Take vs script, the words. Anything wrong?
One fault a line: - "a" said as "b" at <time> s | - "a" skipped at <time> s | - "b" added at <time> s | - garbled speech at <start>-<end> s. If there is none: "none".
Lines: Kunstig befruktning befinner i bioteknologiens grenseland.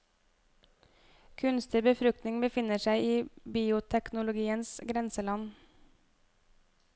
- "seg" added at 2.8 s